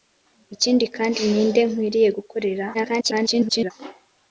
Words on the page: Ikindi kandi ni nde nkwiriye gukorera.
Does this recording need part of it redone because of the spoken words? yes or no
yes